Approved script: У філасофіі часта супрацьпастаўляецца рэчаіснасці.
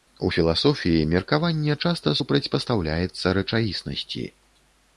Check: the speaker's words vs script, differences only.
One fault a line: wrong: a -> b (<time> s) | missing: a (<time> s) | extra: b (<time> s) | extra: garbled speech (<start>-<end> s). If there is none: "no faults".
extra: меркаванне (1.1 s)